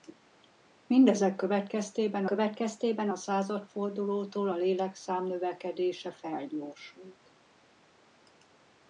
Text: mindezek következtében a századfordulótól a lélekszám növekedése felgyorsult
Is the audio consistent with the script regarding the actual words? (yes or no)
no